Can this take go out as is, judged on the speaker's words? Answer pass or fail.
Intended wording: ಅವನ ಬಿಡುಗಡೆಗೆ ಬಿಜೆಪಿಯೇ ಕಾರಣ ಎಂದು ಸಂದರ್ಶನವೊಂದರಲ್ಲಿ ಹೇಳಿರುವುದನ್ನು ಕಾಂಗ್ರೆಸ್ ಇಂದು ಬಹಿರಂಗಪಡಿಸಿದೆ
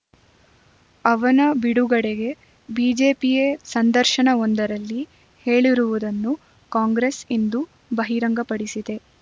fail